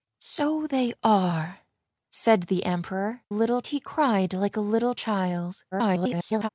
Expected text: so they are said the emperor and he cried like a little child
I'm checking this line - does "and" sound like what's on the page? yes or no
no